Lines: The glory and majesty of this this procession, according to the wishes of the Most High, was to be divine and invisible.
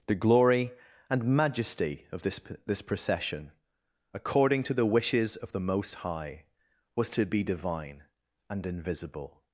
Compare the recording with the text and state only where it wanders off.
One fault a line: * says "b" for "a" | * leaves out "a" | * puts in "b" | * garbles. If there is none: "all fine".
all fine